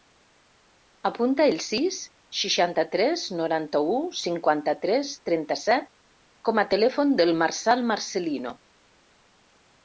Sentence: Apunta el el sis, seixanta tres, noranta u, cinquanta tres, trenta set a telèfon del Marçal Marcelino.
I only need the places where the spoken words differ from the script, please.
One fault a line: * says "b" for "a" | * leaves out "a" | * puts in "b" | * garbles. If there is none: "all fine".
* leaves out "el"
* puts in "com"